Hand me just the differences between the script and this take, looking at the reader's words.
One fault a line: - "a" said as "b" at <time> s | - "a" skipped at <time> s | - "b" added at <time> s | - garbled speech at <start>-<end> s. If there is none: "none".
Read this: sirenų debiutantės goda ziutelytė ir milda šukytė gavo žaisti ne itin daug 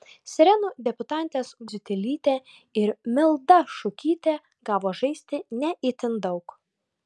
- "goda" skipped at 1.5 s